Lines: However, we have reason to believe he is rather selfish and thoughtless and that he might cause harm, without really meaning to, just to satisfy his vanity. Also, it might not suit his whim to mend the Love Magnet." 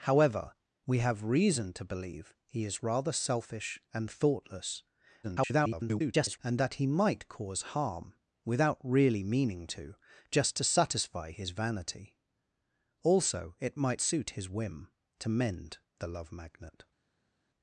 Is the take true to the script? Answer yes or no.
no